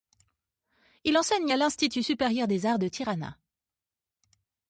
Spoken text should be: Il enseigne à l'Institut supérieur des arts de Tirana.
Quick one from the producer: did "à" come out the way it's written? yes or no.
yes